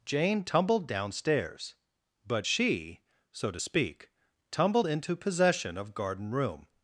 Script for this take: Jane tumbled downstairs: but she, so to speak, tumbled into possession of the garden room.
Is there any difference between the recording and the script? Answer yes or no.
yes